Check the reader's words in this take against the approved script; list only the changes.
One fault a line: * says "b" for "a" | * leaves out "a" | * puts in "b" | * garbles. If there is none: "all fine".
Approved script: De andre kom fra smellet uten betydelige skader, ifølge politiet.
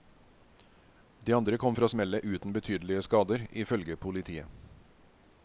all fine